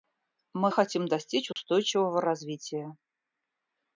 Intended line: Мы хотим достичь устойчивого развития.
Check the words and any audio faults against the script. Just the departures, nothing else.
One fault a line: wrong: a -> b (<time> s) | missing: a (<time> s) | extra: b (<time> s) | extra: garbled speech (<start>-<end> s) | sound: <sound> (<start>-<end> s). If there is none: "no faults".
sound: dropout (1.5-1.6 s)